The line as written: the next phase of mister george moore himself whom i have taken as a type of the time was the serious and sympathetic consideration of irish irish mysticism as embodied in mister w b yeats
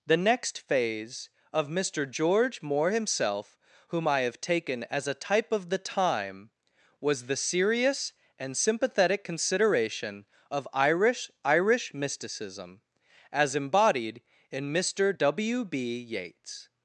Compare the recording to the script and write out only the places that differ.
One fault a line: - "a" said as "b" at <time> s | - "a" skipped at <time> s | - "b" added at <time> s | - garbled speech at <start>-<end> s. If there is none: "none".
none